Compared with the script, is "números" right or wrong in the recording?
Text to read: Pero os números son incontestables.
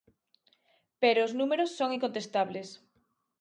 right